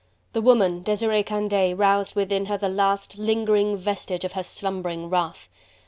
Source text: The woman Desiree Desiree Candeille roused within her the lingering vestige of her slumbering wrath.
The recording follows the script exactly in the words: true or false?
false